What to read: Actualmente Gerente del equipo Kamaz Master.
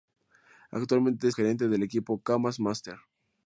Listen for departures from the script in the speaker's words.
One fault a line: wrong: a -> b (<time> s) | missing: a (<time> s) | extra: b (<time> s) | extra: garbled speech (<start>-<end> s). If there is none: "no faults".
no faults